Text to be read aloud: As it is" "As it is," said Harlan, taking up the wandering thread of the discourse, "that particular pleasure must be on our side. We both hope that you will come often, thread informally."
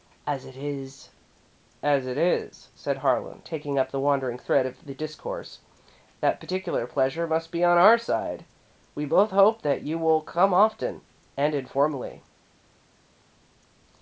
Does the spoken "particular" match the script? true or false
true